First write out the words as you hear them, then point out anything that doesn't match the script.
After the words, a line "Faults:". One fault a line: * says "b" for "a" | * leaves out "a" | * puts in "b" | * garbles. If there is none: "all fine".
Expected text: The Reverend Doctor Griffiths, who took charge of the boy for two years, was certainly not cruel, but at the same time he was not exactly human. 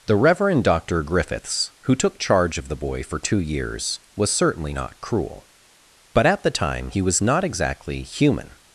The Reverend Doctor Griffiths, who took charge of the boy for two years, was certainly not cruel, but at the time he was not exactly human.
Faults:
* leaves out "same"